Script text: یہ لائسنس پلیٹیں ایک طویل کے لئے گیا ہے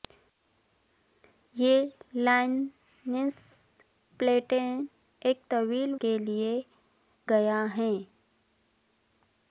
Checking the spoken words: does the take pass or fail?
pass